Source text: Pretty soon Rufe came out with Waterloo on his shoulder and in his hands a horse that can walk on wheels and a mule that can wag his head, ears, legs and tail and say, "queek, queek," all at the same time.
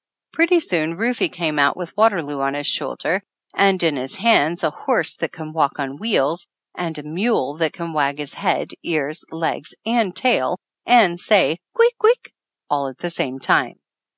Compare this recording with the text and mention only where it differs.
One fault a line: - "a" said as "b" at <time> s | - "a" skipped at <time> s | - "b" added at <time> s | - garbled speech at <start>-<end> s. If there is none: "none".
none